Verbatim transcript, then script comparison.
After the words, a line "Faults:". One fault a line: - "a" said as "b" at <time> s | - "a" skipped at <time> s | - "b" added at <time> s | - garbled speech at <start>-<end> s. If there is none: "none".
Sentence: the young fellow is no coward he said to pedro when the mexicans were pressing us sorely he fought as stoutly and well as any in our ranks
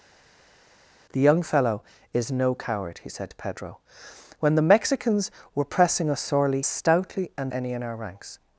the young fellow is no coward he said to pedro when the mexicans were pressing us sorely stoutly and any in our ranks
Faults:
- "he fought as" skipped at 6.6 s
- "well as" skipped at 7.5 s